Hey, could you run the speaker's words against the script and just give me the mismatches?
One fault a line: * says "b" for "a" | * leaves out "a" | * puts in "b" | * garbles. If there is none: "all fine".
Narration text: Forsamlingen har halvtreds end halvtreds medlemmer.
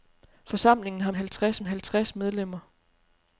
all fine